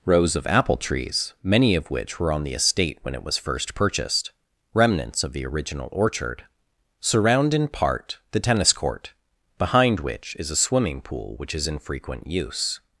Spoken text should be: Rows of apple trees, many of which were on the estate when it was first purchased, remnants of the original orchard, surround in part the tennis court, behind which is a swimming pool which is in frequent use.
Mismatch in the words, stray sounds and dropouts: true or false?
false